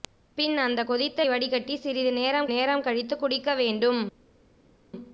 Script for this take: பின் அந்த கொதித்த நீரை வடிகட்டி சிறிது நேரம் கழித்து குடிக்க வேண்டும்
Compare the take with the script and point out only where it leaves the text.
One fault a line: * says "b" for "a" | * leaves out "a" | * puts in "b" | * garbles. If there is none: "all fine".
* leaves out "நீரை"
* puts in "நேரம்"